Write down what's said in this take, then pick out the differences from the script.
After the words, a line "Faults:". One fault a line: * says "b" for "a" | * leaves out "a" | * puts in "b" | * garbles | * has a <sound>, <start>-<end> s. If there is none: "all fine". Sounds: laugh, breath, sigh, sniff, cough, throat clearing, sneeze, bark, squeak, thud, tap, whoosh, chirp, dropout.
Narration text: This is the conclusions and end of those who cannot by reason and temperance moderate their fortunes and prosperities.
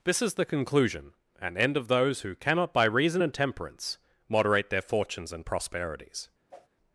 This is the conclusion and end of those who cannot by reason and temperance moderate their fortunes and prosperities.
Faults:
* says "conclusion" for "conclusions"
* has a whoosh, 6.5-6.7 s